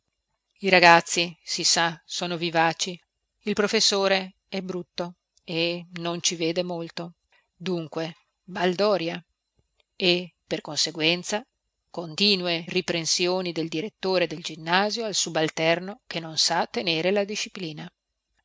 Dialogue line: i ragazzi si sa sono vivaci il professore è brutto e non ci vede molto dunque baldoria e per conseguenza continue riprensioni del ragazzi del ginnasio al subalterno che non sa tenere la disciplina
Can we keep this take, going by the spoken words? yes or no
no